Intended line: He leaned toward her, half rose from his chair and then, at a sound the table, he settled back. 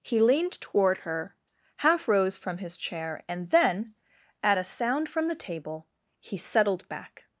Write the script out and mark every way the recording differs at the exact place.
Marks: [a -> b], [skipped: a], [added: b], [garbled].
He leaned toward her, half rose from his chair and then, at a sound [added: from] the table, he settled back.